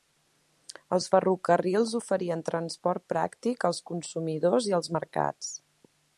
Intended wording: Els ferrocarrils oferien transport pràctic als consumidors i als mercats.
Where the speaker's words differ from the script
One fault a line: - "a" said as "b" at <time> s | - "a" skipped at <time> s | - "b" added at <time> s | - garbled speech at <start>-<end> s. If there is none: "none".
none